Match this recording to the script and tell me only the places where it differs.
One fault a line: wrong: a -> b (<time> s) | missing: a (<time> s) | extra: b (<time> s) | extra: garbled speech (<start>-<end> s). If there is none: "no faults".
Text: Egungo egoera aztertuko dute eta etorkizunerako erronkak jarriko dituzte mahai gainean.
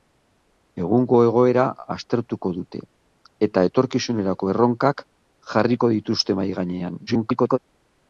extra: garbled speech (7.1-7.6 s)